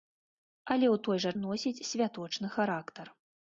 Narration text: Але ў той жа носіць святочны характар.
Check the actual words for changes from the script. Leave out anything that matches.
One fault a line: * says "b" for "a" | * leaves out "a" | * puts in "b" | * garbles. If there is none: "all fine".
all fine